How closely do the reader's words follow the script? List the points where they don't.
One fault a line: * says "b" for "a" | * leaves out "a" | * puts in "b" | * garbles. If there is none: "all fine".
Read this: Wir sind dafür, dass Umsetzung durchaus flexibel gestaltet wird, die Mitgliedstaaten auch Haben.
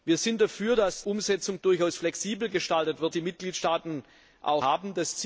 all fine